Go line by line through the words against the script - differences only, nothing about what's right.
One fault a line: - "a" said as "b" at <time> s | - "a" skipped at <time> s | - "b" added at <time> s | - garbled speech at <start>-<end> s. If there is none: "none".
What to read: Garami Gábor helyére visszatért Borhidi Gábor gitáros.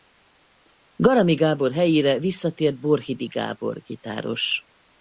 none